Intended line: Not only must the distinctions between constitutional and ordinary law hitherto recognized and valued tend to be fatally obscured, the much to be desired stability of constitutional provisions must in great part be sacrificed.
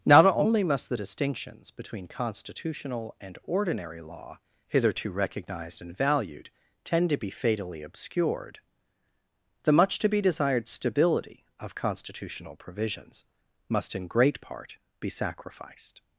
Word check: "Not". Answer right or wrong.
right